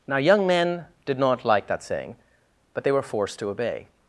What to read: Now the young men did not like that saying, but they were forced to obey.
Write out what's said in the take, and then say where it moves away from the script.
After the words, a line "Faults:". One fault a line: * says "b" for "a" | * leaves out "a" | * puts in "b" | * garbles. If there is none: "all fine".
Now young men did not like that saying, but they were forced to obey.
Faults:
* leaves out "the"